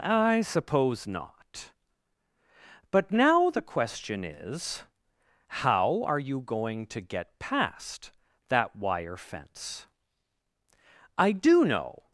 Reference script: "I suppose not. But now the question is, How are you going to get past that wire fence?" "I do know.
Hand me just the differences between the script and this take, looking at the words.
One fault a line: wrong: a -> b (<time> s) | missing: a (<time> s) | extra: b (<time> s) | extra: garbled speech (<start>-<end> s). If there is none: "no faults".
no faults